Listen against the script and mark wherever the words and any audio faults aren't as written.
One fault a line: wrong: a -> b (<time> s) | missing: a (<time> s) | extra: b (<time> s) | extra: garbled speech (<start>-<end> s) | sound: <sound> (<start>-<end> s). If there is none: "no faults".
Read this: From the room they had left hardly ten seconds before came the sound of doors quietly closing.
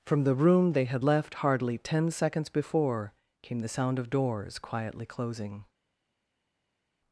no faults